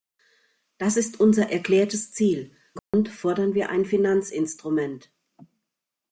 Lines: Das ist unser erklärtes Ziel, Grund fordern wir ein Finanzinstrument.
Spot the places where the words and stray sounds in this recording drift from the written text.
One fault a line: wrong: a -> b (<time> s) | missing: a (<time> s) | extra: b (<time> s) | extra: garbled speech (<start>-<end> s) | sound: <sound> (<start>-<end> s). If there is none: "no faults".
sound: dropout (2.8-2.9 s)